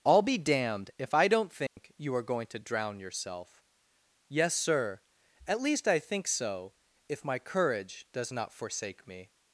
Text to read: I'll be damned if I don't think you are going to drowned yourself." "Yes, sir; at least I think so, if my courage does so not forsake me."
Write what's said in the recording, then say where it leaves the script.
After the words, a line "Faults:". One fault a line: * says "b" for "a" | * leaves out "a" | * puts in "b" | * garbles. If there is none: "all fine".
I'll be damned if I don't think you are going to drown yourself." "Yes, sir; at least I think so, if my courage does not forsake me."
Faults:
* says "drown" for "drowned"
* leaves out "so"